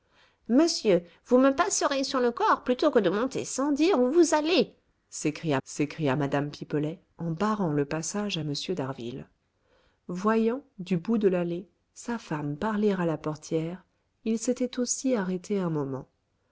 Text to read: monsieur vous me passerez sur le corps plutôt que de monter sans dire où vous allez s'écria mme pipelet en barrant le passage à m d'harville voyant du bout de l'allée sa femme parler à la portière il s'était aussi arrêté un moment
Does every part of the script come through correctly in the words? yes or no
no